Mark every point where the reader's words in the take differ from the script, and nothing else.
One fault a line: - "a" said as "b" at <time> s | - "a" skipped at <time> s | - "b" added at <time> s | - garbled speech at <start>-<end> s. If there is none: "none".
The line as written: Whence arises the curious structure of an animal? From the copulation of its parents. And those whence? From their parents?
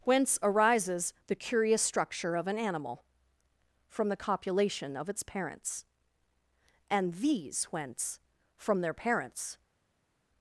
- "those" said as "these" at 7.2 s